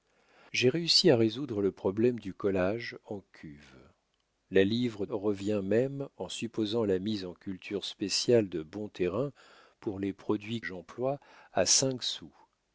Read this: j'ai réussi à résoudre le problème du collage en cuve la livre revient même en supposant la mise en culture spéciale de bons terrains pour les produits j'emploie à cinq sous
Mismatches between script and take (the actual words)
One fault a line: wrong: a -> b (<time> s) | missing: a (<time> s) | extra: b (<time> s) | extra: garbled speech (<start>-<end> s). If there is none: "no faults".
no faults